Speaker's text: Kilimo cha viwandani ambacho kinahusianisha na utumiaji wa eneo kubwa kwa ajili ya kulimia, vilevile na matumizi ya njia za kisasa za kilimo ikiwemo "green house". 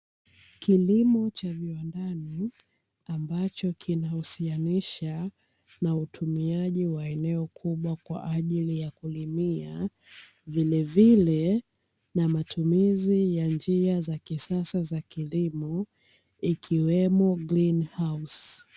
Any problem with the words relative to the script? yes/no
no